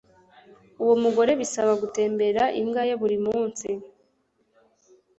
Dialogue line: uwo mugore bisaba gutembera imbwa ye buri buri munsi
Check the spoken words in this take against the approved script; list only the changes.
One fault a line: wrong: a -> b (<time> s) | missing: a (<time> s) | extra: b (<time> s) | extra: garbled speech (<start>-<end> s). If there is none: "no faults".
missing: buri (3.2 s)